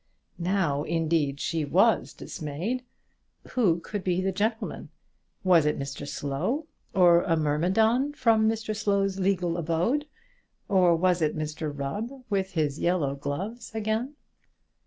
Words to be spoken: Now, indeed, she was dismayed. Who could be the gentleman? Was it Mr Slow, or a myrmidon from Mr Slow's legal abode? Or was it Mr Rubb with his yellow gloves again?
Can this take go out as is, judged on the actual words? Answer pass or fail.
pass